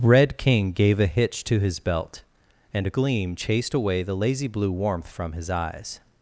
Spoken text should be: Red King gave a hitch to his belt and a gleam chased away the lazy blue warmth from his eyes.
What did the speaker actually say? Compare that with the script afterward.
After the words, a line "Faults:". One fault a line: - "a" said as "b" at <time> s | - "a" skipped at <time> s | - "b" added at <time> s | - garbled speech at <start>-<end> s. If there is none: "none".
Red King gave a hitch to his belt and a gleam chased away the lazy blue warmth from his eyes.
Faults:
none